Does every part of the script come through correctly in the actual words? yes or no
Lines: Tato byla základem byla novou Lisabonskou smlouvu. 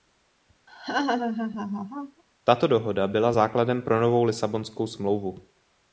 no